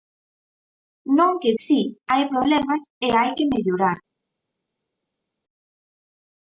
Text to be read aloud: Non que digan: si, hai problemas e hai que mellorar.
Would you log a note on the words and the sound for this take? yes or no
yes